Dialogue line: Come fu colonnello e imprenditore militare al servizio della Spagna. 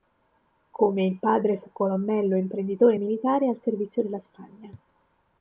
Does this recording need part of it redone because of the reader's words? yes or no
yes